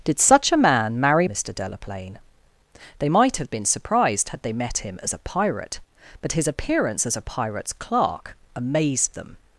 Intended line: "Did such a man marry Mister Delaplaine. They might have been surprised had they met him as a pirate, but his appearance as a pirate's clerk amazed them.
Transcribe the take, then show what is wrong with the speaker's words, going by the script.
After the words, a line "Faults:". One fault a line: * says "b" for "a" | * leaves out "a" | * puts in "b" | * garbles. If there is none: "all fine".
"Did such a man marry Mister Delaplaine. They might have been surprised had they met him as a pirate, but his appearance as a pirate's clerk amazed them.
Faults:
all fine